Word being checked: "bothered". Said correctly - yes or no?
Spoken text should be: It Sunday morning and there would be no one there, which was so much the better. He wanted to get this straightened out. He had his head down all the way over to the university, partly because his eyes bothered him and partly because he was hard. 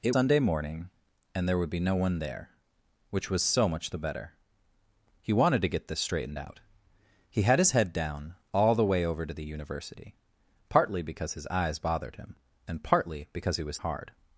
yes